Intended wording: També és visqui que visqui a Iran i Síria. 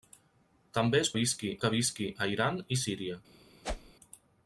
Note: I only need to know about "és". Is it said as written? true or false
true